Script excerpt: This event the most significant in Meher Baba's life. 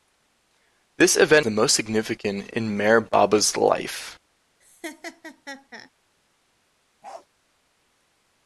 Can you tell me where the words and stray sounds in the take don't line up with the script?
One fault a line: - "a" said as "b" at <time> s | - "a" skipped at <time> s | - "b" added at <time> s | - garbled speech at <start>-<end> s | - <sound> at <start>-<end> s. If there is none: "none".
- laugh at 4.6-5.9 s
- bark at 7.0-7.3 s